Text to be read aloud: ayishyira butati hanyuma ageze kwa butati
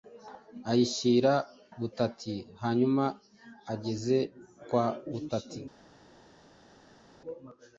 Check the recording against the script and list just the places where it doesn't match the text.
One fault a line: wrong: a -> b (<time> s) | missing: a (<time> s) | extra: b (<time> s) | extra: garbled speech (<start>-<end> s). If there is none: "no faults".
no faults